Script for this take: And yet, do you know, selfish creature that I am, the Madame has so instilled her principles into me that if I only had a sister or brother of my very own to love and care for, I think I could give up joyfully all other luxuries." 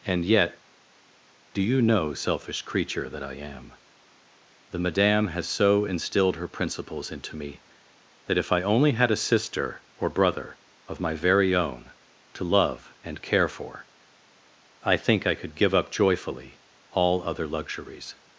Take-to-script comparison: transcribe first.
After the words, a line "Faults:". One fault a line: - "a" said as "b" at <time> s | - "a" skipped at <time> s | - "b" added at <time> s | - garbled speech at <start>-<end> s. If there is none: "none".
And yet, do you know, selfish creature that I am, the Madame has so instilled her principles into me that if I only had a sister or brother of my very own to love and care for, I think I could give up joyfully all other luxuries."
Faults:
none